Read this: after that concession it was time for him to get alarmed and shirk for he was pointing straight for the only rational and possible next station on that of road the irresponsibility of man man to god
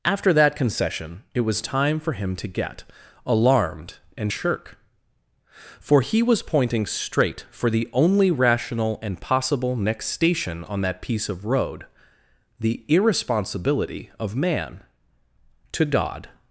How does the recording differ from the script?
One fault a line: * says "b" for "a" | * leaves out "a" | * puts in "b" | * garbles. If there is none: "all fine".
* puts in "piece"
* leaves out "man"